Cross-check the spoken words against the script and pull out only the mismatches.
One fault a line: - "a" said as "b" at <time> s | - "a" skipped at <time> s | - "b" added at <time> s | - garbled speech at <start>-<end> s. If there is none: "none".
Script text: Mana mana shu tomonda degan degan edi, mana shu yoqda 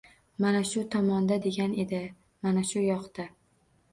- "mana" skipped at 0.6 s
- "degan" skipped at 1.8 s